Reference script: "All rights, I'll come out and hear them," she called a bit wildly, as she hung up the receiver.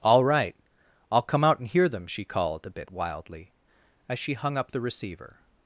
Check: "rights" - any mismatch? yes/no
yes